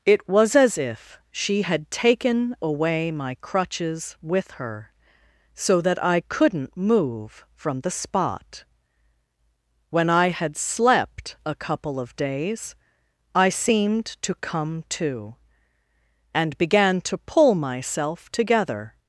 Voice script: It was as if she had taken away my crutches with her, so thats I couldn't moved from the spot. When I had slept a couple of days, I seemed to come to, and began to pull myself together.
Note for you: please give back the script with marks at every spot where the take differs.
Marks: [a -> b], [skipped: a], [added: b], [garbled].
It was as if she had taken away my crutches with her, so [thats -> that] I couldn't [moved -> move] from the spot. When I had slept a couple of days, I seemed to come to, and began to pull myself together.